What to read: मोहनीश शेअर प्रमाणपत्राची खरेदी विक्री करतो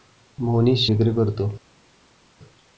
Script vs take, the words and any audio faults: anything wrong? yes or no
yes